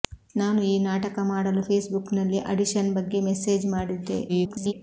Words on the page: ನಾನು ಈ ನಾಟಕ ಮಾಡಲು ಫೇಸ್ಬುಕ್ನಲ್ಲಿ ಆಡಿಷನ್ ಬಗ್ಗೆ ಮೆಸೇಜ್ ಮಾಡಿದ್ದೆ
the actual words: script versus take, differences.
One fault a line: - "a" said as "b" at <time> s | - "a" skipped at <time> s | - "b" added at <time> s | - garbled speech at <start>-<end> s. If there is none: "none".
- garbled speech at 4.3-4.7 s